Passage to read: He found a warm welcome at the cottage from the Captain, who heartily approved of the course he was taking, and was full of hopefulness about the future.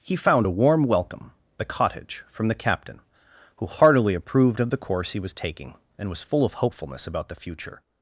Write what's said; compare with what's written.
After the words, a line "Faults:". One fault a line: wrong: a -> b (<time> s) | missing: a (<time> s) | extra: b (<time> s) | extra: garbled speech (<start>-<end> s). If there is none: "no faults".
He found a warm welcome the cottage from the Captain, who heartily approved of the course he was taking, and was full of hopefulness about the future.
Faults:
missing: at (1.3 s)